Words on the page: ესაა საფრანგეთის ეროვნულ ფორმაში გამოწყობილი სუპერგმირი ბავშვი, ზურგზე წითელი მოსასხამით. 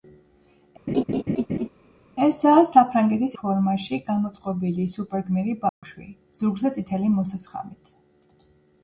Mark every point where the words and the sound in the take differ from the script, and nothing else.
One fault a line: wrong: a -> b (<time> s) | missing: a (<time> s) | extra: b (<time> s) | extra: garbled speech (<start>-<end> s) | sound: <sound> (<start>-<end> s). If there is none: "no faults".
sound: laugh (0.9-1.7 s)
missing: ეროვნულ (3.3 s)
sound: dropout (5.7-5.8 s)